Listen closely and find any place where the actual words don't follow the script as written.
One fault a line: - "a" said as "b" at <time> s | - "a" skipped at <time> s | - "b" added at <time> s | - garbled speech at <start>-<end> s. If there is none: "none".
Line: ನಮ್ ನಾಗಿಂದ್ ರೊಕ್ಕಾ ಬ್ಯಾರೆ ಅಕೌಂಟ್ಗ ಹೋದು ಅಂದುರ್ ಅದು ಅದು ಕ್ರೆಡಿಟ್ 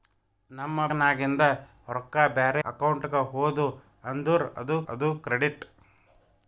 none